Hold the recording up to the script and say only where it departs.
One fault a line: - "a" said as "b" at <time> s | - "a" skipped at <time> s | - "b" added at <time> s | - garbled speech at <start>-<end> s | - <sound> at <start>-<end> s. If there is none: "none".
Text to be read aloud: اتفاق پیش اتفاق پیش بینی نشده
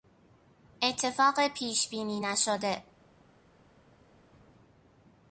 - "اتفاق پیش" skipped at 1.9 s